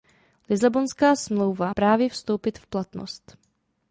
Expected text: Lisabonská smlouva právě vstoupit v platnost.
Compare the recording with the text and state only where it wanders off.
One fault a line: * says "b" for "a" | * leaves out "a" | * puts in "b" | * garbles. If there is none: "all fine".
all fine